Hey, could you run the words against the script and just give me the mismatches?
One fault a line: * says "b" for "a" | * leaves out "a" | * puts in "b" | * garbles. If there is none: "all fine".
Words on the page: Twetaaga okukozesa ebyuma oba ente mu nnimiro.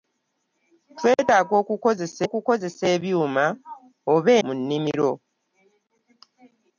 * puts in "okukozesa"
* leaves out "ente"